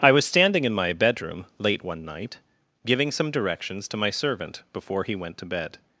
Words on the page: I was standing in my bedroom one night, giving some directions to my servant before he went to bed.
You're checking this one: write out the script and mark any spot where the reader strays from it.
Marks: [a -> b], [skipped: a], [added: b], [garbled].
I was standing in my bedroom [added: late] one night, giving some directions to my servant before he went to bed.